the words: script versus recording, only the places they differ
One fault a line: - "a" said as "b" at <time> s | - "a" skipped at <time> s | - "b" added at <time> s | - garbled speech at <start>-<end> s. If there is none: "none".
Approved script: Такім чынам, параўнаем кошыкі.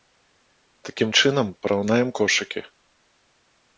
none